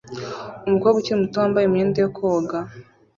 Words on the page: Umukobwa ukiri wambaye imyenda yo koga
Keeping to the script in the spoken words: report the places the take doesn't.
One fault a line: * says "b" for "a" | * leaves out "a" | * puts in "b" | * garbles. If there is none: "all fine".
* puts in "muto"